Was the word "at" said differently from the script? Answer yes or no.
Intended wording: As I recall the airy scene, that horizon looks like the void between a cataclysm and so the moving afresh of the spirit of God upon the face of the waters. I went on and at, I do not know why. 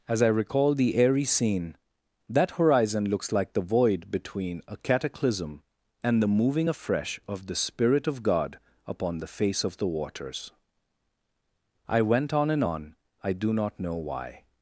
yes